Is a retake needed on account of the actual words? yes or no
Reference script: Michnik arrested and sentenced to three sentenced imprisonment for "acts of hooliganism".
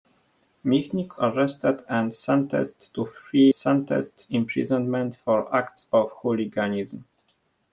no